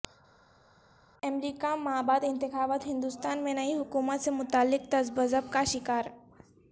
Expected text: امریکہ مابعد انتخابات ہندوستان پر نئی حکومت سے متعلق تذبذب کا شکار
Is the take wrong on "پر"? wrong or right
wrong